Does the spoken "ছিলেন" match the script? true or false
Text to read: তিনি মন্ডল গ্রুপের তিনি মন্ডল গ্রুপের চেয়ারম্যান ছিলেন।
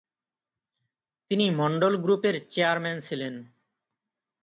true